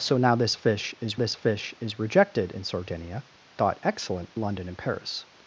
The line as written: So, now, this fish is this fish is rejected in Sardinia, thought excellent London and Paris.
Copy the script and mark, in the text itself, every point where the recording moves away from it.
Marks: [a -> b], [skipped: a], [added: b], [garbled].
So, now, this fish is this fish is rejected in Sardinia, thought excellent London and Paris.